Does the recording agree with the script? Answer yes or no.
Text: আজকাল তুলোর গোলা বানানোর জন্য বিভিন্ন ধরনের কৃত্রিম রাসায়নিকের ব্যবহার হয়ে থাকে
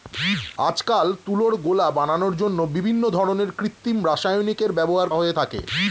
yes